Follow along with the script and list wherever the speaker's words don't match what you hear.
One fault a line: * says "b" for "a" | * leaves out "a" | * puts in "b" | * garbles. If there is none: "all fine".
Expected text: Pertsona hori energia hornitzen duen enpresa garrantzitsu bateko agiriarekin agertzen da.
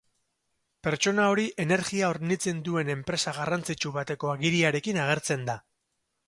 all fine